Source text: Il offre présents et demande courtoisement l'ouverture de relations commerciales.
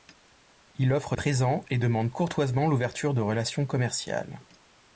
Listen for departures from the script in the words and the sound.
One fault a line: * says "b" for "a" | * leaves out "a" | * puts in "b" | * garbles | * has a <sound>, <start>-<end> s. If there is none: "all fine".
all fine